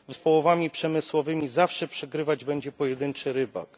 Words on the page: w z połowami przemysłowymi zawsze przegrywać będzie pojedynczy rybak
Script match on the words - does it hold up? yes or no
yes